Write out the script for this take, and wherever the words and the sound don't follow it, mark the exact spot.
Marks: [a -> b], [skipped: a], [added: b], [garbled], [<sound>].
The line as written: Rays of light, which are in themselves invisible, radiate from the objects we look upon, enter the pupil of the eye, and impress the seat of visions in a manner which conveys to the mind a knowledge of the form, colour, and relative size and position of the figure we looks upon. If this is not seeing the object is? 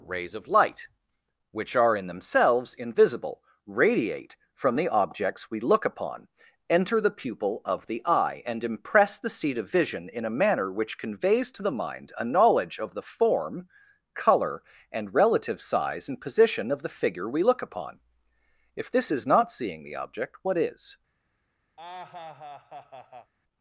Rays of light, which are in themselves invisible, radiate from the objects we look upon, enter the pupil of the eye, and impress the seat of [visions -> vision] in a manner which conveys to the mind a knowledge of the form, colour, and relative size and position of the figure we [looks -> look] upon. If this is not seeing the object [added: what] is? [laugh]